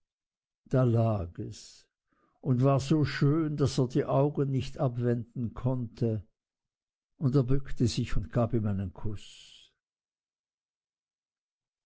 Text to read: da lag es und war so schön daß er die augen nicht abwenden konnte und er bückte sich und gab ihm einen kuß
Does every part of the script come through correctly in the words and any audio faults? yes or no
yes